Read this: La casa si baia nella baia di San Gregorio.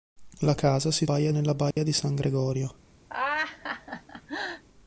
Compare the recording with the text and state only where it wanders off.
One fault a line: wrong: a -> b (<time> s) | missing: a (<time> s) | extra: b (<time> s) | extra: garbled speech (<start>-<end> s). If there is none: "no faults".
no faults